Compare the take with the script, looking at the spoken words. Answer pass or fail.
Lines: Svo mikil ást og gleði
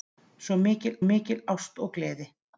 fail